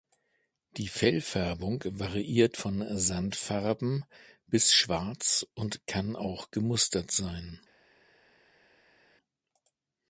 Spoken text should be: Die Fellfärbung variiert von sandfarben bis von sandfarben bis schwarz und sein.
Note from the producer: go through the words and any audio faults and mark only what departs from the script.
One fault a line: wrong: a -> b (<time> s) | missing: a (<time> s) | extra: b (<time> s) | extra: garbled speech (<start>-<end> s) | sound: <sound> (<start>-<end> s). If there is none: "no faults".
wrong: von sandfarben bis schwarz und -> schwarz und kann auch gemustert (4.7 s)